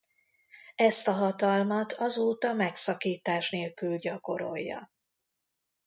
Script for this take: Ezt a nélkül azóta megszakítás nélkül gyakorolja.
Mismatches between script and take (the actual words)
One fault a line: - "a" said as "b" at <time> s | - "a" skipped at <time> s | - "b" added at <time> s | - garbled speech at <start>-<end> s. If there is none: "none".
- "nélkül" said as "hatalmat" at 1.1 s